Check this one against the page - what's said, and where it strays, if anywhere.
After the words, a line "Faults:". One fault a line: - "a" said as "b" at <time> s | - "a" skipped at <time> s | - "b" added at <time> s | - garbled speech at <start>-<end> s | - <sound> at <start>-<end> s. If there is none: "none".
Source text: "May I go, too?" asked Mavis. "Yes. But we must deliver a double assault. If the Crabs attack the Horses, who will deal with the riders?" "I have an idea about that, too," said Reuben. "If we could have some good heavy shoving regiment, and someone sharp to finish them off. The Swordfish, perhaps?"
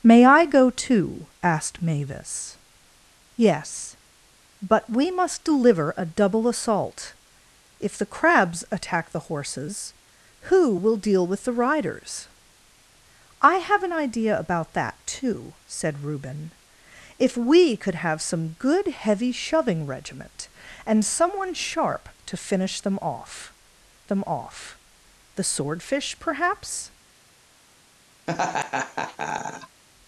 "May I go, too?" asked Mavis. "Yes. But we must deliver a double assault. If the Crabs attack the Horses, who will deal with the riders?" "I have an idea about that, too," said Reuben. "If we could have some good heavy shoving regiment, and someone sharp to finish them off them off. The Swordfish, perhaps?"
Faults:
- "them off" added at 24.0 s
- laugh at 28.3-29.8 s